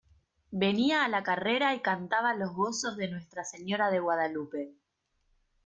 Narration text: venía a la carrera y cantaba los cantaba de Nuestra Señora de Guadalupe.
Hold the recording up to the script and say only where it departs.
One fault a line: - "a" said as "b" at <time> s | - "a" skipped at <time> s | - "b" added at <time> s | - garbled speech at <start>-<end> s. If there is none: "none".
- "cantaba" said as "gozos" at 2.5 s